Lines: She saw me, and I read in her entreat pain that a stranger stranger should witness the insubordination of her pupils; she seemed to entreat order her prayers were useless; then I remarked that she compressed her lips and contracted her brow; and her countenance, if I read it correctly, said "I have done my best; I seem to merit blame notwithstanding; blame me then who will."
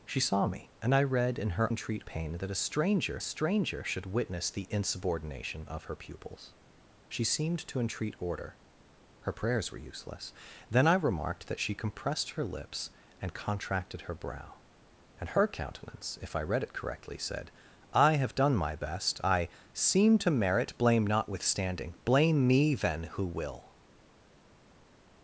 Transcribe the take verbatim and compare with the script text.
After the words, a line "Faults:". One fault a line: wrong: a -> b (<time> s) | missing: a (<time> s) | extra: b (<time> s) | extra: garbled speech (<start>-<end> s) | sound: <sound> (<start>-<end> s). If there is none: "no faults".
She saw me, and I read in her entreat pain that a stranger stranger should witness the insubordination of her pupils; she seemed to entreat order her prayers were useless; then I remarked that she compressed her lips and contracted her brow; and her countenance, if I read it correctly, said "I have done my best; I seem to merit blame notwithstanding; blame me then who will."
Faults:
no faults